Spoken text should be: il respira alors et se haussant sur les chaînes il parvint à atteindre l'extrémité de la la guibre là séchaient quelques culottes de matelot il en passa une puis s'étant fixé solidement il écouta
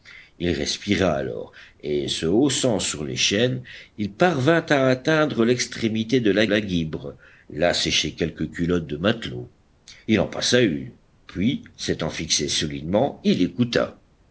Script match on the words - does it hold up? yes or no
yes